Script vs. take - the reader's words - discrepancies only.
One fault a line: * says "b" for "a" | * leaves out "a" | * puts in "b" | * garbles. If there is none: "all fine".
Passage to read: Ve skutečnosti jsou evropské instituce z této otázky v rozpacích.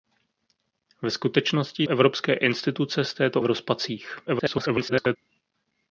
* leaves out "jsou"
* leaves out "otázky"
* garbles